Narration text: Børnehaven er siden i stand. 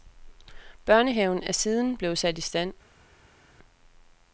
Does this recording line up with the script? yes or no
no